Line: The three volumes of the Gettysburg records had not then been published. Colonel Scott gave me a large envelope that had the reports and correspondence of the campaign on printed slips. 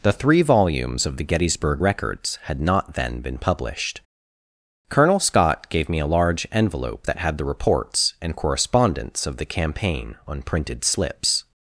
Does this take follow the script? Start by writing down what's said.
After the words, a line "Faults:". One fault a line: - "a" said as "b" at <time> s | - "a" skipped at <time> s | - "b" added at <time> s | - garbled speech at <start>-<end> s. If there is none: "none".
The three volumes of the Gettysburg records had not then been published. Colonel Scott gave me a large envelope that had the reports and correspondence of the campaign on printed slips.
Faults:
none